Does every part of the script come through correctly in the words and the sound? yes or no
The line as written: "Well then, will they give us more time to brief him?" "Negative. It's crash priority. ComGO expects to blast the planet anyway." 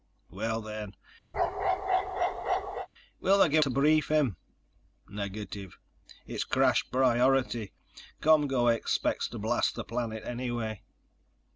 no